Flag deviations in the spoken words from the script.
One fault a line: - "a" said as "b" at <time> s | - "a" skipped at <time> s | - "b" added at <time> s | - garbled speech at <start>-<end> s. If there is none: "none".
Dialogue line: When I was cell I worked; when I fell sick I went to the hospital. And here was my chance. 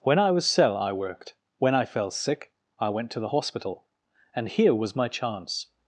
none